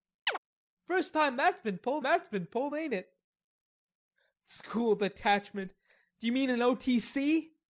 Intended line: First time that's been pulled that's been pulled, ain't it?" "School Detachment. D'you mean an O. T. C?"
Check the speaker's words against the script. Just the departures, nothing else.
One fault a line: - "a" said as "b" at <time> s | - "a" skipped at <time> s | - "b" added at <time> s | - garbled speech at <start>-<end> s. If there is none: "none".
none